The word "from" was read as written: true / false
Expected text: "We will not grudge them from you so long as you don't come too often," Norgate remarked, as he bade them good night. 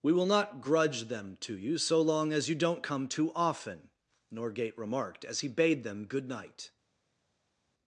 false